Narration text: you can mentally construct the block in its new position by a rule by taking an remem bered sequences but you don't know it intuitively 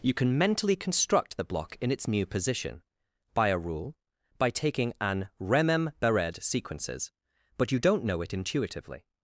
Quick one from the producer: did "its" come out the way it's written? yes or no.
yes